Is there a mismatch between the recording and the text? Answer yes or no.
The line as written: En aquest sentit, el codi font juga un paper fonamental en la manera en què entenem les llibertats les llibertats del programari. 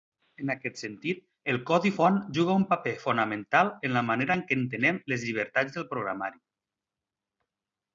yes